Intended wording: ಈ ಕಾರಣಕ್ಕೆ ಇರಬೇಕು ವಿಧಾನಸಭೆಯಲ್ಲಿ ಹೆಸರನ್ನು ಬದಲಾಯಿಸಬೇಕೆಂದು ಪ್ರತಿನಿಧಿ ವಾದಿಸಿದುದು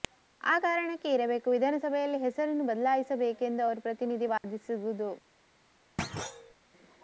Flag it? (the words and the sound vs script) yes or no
yes